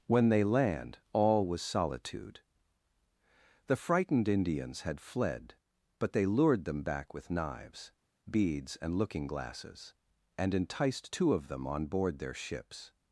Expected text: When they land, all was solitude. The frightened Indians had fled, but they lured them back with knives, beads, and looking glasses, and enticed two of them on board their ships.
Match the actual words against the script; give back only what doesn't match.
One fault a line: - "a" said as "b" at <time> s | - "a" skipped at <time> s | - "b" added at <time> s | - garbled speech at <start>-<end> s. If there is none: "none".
none